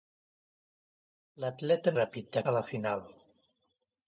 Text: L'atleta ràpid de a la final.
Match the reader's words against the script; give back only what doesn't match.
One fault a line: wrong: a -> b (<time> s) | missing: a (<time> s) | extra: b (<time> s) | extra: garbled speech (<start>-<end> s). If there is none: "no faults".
no faults